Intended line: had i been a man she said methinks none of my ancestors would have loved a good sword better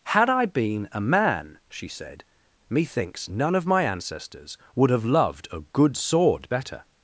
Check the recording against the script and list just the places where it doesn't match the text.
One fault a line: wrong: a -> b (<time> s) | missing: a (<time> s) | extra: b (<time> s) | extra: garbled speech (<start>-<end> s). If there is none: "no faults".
no faults